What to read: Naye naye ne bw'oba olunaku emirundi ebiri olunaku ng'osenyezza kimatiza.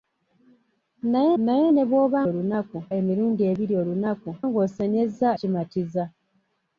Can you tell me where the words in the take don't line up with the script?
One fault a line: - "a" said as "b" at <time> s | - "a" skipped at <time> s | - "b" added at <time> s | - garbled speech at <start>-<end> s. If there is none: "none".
none